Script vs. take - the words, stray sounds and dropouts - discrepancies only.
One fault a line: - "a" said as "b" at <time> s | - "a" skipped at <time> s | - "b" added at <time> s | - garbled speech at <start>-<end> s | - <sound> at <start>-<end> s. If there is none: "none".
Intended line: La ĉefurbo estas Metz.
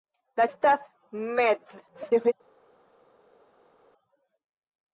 - "ĉefurbo" skipped at 0.5 s
- garbled speech at 1.9-2.3 s